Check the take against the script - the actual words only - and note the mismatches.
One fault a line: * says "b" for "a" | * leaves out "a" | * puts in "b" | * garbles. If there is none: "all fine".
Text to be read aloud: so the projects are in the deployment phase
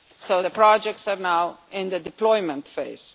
* puts in "now"